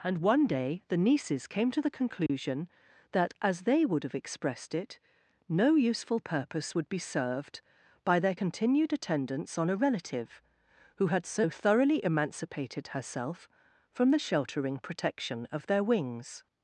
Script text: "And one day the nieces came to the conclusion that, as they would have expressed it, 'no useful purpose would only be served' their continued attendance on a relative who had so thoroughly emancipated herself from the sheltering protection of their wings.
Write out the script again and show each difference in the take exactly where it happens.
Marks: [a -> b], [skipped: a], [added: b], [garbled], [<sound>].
"And one day the nieces came to the conclusion [dropout] that, as they would have expressed it, 'no useful purpose would [skipped: only] be served' [added: by] their continued attendance on a relative who had so thoroughly emancipated herself from the sheltering protection of their wings.